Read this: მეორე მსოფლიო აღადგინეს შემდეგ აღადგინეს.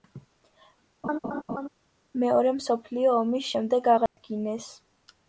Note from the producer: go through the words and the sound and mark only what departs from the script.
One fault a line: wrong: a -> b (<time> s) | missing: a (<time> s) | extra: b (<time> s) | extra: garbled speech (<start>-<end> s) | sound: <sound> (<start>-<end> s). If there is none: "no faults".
sound: laugh (1.0-1.7 s)
wrong: აღადგინეს -> ომის (3.2 s)
sound: dropout (4.1-4.2 s)